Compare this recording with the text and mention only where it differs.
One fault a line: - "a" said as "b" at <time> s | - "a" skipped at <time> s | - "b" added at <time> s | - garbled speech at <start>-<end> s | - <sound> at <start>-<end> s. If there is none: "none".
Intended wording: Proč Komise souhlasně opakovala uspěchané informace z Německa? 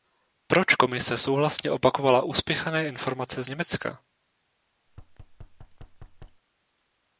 - thud at 4.9-6.4 s